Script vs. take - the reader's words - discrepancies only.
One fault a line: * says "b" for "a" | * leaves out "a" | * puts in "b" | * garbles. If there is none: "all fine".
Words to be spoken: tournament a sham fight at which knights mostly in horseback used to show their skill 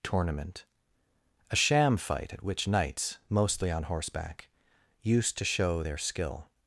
* says "on" for "in"